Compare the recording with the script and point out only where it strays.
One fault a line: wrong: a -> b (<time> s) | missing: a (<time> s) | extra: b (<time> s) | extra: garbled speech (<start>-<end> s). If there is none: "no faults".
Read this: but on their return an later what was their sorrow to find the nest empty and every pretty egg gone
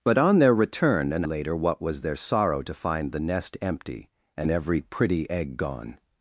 no faults